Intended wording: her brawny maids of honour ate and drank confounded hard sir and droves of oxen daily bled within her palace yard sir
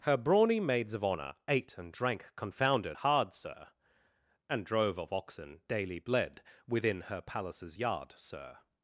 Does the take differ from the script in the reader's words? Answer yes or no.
yes